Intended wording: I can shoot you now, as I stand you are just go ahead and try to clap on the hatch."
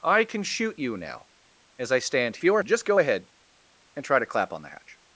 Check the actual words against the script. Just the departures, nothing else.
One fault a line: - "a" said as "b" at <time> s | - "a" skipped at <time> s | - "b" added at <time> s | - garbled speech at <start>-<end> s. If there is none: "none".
none